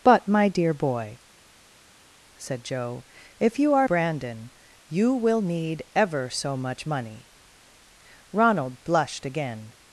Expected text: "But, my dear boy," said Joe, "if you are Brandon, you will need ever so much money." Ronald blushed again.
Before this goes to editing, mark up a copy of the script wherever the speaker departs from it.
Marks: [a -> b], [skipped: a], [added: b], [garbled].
"But, my dear boy," said Joe, "if you are Brandon, you will need ever so much money." Ronald blushed again.